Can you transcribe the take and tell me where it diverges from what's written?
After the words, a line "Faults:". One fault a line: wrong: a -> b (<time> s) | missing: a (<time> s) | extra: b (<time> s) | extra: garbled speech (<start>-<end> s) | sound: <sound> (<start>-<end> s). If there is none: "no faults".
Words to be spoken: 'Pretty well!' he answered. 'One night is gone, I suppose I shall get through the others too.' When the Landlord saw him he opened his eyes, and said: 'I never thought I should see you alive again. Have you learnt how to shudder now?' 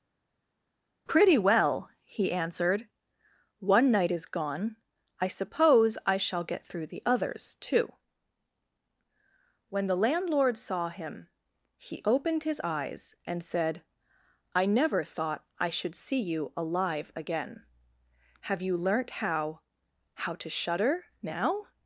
'Pretty well!' he answered. 'One night is gone, I suppose I shall get through the others too.' When the Landlord saw him he opened his eyes, and said: 'I never thought I should see you alive again. Have you learnt how how to shudder now?'
Faults:
extra: how (20.1 s)